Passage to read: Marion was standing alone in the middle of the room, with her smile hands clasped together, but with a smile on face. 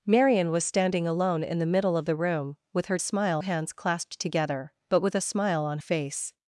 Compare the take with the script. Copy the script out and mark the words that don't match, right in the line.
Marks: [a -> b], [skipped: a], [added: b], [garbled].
Marion was standing alone in the middle of the room, with her smile hands clasped together, but with a smile on face.